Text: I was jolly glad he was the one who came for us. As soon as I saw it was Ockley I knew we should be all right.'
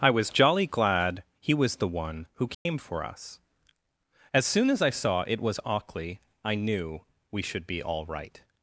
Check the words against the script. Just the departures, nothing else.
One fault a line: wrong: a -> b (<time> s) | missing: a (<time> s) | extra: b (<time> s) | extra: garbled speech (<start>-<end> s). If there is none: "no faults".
no faults